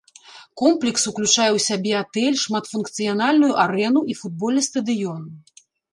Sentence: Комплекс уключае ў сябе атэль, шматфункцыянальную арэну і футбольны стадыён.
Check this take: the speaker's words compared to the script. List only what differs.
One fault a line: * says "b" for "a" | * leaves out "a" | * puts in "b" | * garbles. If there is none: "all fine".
all fine